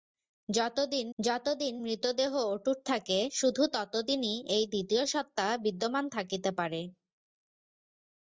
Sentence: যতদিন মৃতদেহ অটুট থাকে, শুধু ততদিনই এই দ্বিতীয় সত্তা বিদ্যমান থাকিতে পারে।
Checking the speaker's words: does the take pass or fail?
fail